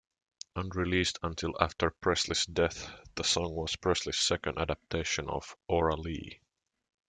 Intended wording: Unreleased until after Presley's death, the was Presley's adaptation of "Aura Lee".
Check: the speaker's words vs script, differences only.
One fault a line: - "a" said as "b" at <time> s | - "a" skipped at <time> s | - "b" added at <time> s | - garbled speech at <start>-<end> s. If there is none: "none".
- "song" added at 3.2 s
- "second" added at 4.2 s